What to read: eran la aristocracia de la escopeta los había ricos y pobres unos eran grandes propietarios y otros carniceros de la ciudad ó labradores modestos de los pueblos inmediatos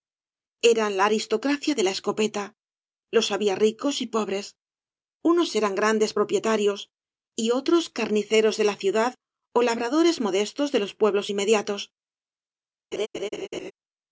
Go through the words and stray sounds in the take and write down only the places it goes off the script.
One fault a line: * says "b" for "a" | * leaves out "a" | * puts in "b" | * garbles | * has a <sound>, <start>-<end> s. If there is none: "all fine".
* has a laugh, 12.9-13.7 s